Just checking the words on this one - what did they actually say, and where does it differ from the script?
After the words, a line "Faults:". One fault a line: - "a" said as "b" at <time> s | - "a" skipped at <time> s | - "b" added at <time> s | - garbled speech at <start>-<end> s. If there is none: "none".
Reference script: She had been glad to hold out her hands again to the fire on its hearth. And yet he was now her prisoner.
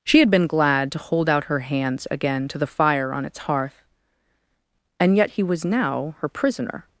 She had been glad to hold out her hands again to the fire on its hearth. And yet he was now her prisoner.
Faults:
none